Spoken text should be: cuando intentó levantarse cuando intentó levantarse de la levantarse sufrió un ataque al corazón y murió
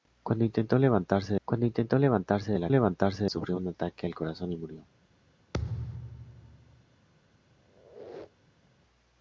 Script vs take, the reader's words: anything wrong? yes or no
no